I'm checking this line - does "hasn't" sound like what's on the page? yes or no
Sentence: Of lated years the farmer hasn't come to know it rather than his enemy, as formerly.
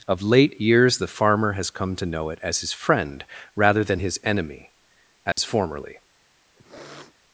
no